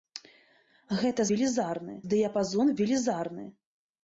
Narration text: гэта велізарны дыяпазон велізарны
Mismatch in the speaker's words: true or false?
false